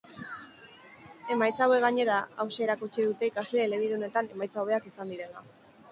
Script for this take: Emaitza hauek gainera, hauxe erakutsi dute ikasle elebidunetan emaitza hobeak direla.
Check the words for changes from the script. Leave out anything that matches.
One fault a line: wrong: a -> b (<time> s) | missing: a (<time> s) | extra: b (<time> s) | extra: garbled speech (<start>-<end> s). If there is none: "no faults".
extra: izan (4.9 s)